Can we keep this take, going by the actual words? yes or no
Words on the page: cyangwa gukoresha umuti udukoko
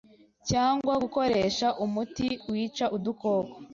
no